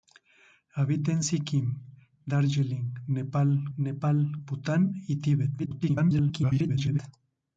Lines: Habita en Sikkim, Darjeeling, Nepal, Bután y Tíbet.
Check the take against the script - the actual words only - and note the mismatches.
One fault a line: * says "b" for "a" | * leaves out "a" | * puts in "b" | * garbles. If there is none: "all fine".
* puts in "Nepal"
* garbles